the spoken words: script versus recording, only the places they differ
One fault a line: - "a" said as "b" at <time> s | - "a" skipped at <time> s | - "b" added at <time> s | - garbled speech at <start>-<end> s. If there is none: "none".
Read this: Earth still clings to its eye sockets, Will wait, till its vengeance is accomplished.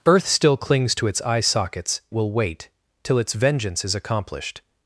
none